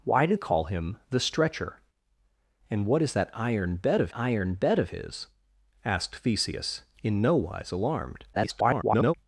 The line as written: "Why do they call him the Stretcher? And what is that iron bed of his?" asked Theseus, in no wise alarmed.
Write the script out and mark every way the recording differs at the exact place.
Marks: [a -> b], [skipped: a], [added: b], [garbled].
"Why do [skipped: they] call him the Stretcher? And what is that iron bed of [added: iron bed of] his?" asked Theseus, in no wise alarmed. [garbled]